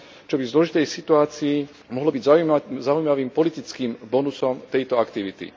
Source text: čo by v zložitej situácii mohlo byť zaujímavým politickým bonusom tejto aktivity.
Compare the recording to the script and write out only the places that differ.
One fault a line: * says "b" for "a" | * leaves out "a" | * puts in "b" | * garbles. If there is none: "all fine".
all fine